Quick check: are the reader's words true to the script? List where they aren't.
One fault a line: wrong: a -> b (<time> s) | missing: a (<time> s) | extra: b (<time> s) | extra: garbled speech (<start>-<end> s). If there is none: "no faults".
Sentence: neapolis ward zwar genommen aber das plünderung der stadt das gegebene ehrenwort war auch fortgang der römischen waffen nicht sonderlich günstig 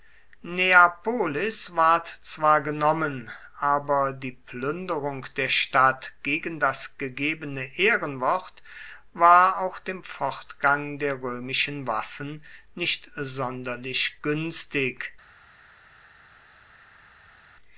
wrong: das -> die (4.1 s)
extra: gegen (6.2 s)
extra: dem (9.8 s)